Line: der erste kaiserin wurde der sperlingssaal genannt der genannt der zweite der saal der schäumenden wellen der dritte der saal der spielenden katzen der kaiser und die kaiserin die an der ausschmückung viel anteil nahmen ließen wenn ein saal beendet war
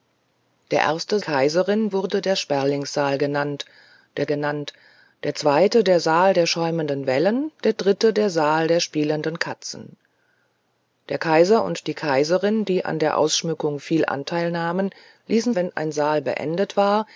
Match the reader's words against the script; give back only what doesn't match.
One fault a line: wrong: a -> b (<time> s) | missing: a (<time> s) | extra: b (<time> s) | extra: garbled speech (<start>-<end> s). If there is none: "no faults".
no faults